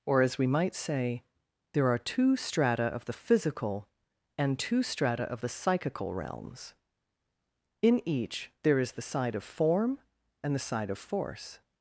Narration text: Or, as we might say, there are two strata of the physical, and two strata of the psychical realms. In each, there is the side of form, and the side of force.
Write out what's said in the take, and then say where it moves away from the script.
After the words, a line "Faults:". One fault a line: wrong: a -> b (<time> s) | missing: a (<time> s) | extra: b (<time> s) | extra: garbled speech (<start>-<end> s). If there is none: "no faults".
Or, as we might say, there are two strata of the physical, and two strata of the psychical realms. In each, there is the side of form, and the side of force.
Faults:
no faults